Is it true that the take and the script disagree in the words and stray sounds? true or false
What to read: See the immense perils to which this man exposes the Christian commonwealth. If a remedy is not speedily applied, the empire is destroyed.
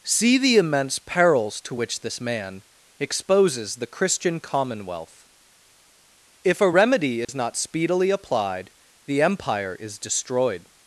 true